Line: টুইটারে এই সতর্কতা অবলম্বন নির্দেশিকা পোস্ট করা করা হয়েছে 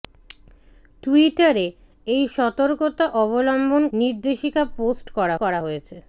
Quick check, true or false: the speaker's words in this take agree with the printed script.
true